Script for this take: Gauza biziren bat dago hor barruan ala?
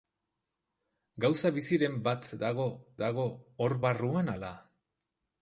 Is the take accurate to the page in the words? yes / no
no